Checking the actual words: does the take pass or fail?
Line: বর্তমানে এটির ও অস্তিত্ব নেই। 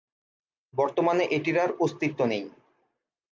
fail